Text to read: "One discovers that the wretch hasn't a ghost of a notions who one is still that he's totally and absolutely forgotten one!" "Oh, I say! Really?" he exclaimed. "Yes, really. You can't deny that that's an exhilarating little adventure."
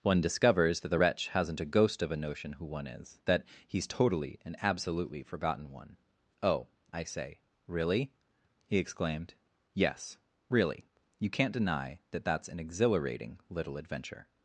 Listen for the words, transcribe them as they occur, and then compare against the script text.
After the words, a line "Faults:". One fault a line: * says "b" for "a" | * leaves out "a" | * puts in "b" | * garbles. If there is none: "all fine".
"One discovers that the wretch hasn't a ghost of a notion who one is that he's totally and absolutely forgotten one!" "Oh, I say! Really?" he exclaimed. "Yes, really. You can't deny that that's an exhilarating little adventure."
Faults:
* says "notion" for "notions"
* leaves out "still"